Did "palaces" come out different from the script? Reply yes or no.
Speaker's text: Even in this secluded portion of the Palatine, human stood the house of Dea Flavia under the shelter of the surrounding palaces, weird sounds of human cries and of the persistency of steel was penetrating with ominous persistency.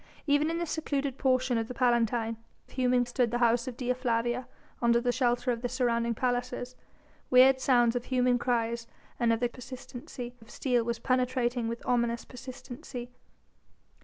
no